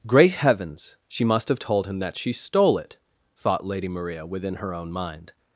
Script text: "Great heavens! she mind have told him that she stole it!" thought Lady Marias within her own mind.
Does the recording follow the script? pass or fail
fail